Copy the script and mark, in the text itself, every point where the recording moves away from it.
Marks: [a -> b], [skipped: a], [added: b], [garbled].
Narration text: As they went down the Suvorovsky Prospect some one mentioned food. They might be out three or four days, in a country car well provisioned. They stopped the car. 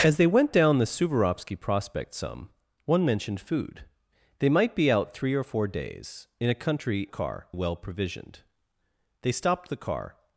As they went down the Suvorovsky Prospect some one mentioned food. They might be out three or four days, in a country car well provisioned. They stopped the car.